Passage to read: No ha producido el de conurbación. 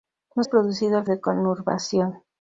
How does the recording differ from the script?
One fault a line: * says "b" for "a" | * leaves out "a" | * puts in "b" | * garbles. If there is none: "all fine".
all fine